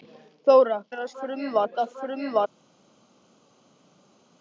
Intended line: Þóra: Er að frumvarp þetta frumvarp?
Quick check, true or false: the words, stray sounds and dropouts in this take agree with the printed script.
true